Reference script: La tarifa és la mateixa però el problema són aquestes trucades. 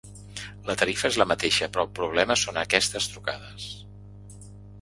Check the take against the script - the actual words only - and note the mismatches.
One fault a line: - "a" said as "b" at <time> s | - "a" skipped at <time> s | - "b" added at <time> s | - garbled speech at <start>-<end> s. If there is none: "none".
none